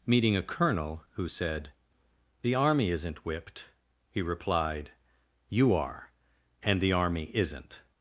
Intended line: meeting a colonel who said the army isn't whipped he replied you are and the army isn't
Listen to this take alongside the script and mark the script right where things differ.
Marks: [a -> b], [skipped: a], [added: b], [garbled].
meeting a colonel who said the army isn't whipped he replied you are and the army isn't